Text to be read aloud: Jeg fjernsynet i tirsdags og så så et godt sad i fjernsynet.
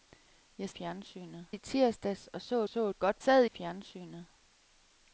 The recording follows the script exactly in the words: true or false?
true